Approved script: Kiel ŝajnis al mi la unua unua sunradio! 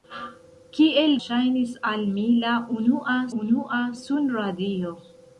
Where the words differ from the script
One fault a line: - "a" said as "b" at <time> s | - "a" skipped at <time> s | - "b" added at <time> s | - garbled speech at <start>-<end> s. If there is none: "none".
none